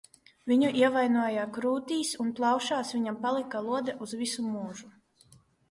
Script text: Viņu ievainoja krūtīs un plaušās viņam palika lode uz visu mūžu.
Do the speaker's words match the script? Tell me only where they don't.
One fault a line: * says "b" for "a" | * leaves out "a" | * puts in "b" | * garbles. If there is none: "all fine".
all fine